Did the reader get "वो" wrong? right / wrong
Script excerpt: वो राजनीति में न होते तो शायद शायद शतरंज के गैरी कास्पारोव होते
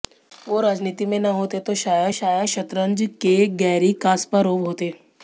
right